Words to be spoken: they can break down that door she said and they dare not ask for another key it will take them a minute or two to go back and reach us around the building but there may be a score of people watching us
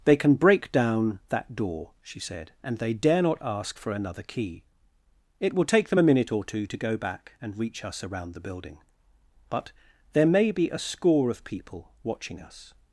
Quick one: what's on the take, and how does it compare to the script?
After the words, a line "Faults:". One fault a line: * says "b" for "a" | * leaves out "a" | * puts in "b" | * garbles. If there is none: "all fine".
they can break down that door she said and they dare not ask for another key it will take them a minute or two to go back and reach us around the building but there may be a score of people watching us
Faults:
all fine